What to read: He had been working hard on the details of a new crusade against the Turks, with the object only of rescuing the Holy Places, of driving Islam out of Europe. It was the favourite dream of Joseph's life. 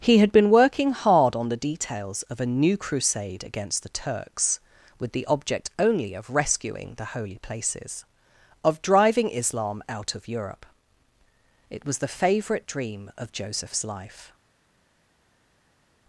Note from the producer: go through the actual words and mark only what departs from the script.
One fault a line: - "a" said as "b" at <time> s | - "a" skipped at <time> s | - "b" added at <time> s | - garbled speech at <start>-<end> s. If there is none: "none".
none